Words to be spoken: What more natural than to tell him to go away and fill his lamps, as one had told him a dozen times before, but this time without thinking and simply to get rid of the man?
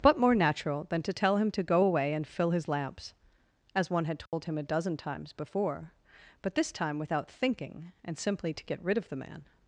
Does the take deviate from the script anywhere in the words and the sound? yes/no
yes